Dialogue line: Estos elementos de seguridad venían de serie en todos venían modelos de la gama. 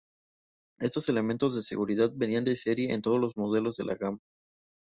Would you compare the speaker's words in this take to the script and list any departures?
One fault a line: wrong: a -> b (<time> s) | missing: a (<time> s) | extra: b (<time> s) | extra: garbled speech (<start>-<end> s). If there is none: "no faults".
wrong: venían -> los (3.2 s)